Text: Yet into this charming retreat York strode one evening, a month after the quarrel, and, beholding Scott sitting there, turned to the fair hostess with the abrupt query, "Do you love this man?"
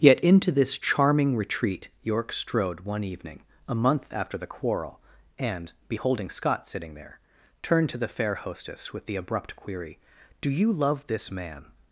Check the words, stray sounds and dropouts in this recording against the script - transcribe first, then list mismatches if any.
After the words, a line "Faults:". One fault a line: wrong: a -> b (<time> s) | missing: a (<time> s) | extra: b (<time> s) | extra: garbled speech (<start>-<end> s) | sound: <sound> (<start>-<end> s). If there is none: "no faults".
Yet into this charming retreat York strode one evening, a month after the quarrel, and, beholding Scott sitting there, turned to the fair hostess with the abrupt query, "Do you love this man?"
Faults:
no faults